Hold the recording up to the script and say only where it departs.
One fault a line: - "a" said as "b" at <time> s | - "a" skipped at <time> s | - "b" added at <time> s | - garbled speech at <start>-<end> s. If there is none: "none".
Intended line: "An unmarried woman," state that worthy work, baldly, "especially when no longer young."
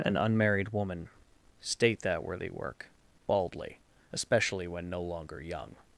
none